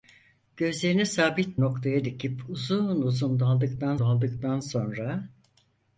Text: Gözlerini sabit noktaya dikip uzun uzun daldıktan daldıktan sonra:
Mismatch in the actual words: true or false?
false